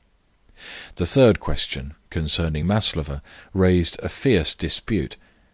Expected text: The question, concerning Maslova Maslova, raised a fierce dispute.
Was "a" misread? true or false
false